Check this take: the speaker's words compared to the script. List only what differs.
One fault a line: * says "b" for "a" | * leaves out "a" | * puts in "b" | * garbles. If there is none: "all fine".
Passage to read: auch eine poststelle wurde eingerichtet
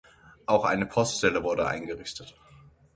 all fine